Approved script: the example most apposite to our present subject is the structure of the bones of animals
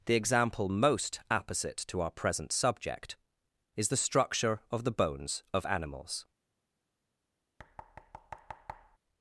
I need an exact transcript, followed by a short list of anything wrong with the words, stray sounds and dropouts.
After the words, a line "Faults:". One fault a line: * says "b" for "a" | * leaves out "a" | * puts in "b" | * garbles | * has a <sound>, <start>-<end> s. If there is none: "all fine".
the example most apposite to our present subject is the structure of the bones of animals
Faults:
* has a thud, 7.6-9.0 s